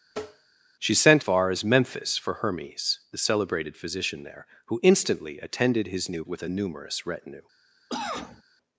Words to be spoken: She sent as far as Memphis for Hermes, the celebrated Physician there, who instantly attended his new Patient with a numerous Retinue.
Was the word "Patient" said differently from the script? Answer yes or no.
yes